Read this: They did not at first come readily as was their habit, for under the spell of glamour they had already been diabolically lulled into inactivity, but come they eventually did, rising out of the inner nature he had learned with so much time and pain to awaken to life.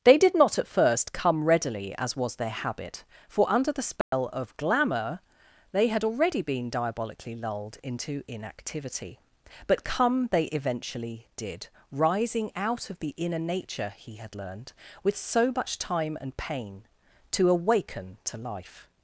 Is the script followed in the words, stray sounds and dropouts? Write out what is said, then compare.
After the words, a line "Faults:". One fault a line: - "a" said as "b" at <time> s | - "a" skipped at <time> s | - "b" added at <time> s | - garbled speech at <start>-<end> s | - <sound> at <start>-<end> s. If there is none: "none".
They did not at first come readily as was their habit, for under the spell of glamour they had already been diabolically lulled into inactivity, but come they eventually did, rising out of the inner nature he had learned with so much time and pain to awaken to life.
Faults:
- dropout at 4.0-4.1 s